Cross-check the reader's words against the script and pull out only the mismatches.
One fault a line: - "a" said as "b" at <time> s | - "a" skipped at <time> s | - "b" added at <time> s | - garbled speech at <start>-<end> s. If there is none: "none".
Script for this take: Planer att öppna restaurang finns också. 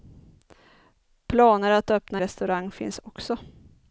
none